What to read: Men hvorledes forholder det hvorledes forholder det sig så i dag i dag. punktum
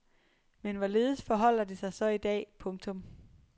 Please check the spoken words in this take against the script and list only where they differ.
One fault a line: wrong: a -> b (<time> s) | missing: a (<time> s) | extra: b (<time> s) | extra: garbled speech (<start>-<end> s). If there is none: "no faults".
missing: hvorledes forholder det (1.8 s)
missing: i dag (2.5 s)